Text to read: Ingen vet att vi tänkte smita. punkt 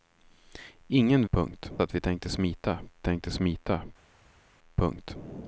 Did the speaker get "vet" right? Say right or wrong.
wrong